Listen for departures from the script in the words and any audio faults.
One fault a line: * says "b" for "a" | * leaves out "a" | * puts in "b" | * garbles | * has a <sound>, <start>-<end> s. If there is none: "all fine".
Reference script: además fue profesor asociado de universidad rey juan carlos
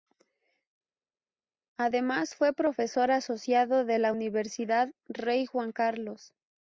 * puts in "la"